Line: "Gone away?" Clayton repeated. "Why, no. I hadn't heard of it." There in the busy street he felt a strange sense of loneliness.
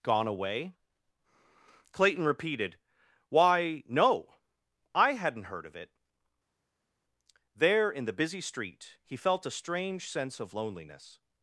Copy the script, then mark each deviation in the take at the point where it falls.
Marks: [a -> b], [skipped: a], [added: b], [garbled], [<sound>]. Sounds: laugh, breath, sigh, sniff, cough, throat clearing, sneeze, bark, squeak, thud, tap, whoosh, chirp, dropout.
"Gone away?" Clayton repeated. "Why, no. I hadn't heard of it." There in the busy street he felt a strange sense of loneliness.